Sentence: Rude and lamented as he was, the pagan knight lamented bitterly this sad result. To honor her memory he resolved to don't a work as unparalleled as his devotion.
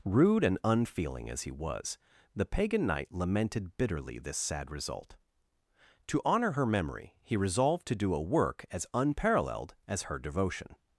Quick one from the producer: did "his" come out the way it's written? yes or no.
no